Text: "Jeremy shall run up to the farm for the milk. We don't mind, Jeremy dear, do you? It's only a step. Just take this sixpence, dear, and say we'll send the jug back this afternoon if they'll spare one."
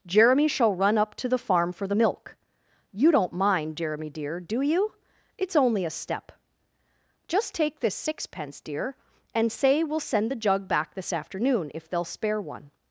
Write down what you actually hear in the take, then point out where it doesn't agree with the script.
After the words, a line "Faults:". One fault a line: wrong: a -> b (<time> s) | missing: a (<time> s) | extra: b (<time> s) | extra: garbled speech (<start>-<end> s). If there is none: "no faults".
"Jeremy shall run up to the farm for the milk. You don't mind, Jeremy dear, do you? It's only a step. Just take this sixpence, dear, and say we'll send the jug back this afternoon if they'll spare one."
Faults:
wrong: We -> You (2.9 s)